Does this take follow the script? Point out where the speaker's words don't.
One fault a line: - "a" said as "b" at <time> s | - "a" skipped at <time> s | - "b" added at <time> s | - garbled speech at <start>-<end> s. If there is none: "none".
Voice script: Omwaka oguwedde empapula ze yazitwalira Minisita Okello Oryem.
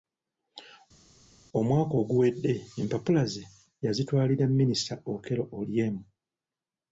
none